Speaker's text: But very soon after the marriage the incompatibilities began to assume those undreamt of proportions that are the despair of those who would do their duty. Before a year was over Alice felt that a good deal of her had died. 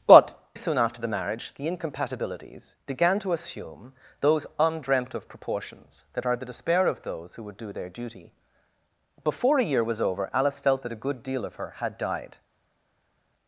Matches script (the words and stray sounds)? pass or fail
fail